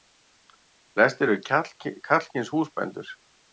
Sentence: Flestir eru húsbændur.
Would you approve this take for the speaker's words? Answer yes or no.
no